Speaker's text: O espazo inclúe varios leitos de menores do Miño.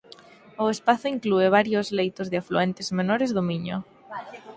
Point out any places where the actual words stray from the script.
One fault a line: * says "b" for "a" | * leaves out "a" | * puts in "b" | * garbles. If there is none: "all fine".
* puts in "afluentes"